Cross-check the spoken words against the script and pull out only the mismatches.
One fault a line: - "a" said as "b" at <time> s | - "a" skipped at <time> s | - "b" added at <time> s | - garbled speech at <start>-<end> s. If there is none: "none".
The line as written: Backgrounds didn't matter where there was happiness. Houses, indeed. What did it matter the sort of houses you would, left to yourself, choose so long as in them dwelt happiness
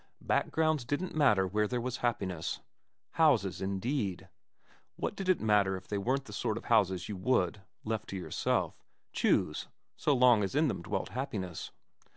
- "if they weren't" added at 5.8 s